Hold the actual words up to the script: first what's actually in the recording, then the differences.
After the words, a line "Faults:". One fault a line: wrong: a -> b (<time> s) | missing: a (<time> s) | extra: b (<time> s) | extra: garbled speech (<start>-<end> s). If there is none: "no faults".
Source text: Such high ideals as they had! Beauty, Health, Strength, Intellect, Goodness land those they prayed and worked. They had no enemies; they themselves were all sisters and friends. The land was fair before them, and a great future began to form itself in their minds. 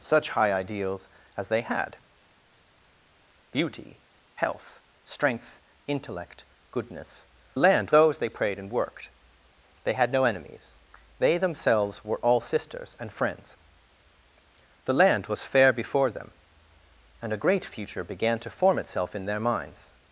Such high ideals as they had! Beauty, Health, Strength, Intellect, Goodness land those they prayed and worked. They had no enemies; they themselves were all sisters and friends. The land was fair before them, and a great future began to form itself in their minds.
Faults:
no faults